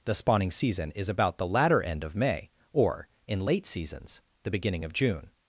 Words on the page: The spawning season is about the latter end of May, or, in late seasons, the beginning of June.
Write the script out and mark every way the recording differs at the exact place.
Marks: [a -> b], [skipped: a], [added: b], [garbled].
The spawning season is about the latter end of May, or, in late seasons, the beginning of June.